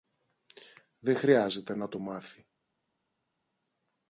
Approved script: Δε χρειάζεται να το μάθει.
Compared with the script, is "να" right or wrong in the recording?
right